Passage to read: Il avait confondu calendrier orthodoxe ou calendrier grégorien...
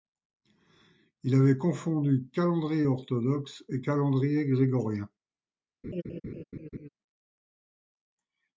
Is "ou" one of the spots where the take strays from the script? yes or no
yes